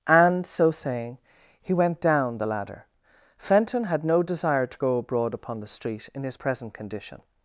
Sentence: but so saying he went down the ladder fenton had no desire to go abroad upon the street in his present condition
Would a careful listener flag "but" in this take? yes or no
yes